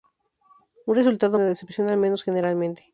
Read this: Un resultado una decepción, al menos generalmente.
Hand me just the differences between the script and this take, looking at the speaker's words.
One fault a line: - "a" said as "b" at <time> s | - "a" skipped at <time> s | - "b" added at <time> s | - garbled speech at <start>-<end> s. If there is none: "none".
none